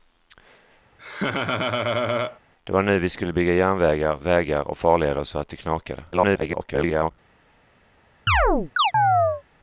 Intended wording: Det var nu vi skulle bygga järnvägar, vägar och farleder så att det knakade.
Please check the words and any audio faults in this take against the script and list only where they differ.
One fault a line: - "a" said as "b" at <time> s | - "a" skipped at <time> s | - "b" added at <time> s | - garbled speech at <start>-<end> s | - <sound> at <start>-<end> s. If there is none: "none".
- laugh at 1.0-2.4 s
- garbled speech at 6.1-7.1 s
- chirp at 8.3-9.4 s